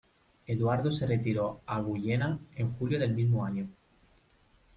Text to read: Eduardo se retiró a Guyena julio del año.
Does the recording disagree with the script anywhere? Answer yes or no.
yes